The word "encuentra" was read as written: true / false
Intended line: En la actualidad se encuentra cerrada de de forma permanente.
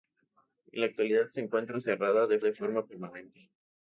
true